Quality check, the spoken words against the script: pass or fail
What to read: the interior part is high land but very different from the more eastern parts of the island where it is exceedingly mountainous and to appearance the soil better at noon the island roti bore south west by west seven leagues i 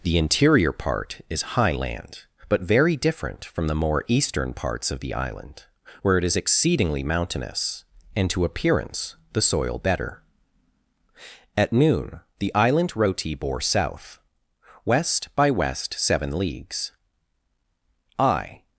pass